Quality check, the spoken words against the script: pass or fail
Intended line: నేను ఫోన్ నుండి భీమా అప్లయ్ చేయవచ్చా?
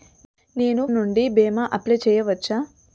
fail